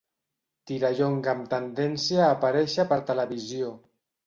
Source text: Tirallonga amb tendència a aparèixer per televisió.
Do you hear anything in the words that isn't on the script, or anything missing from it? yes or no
no